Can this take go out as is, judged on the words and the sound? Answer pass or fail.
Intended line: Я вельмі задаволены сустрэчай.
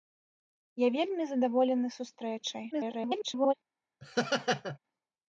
fail